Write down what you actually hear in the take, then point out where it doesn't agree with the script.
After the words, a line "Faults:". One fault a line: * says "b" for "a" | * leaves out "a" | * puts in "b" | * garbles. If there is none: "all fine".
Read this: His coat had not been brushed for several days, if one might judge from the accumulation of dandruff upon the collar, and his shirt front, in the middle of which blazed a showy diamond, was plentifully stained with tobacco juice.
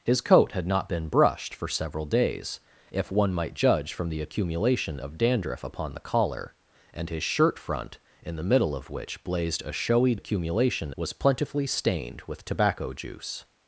His coat had not been brushed for several days, if one might judge from the accumulation of dandruff upon the collar, and his shirt front, in the middle of which blazed a showy accumulation, was plentifully stained with tobacco juice.
Faults:
* says "accumulation" for "diamond"